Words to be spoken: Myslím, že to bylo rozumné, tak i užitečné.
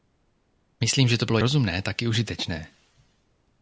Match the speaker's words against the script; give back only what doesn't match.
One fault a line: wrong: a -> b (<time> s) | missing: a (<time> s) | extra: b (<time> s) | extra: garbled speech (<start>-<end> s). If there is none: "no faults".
no faults